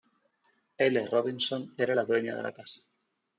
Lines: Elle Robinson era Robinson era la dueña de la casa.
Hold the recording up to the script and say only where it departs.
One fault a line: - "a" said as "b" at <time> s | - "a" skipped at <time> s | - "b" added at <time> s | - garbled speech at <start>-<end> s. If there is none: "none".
- "Robinson era" skipped at 1.9 s